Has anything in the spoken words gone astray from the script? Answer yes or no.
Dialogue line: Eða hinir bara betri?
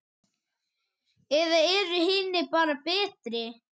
yes